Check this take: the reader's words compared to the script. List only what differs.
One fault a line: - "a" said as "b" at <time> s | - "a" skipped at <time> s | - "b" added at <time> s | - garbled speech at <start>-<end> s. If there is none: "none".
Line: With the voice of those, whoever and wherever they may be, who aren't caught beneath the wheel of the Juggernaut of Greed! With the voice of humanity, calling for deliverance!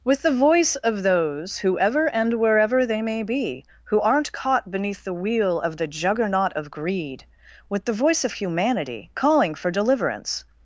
none